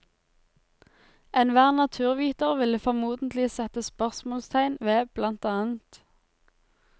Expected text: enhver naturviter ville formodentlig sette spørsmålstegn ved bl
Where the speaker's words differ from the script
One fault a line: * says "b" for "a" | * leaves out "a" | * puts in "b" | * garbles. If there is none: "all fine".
all fine